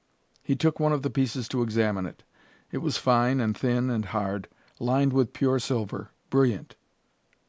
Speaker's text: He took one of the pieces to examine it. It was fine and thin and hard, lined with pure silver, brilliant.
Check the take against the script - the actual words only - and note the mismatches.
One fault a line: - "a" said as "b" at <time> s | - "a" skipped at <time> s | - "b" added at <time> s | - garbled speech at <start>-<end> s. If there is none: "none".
none